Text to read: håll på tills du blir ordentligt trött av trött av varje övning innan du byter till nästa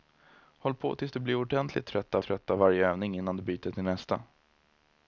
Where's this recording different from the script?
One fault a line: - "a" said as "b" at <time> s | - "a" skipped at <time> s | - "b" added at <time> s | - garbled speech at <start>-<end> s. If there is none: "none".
none